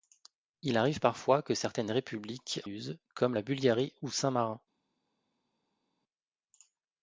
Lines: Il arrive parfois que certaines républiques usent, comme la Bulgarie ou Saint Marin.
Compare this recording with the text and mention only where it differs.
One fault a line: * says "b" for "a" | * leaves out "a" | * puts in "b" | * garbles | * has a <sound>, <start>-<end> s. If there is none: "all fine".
all fine